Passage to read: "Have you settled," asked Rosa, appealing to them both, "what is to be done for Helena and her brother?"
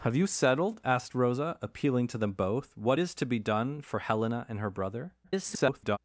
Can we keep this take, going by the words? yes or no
no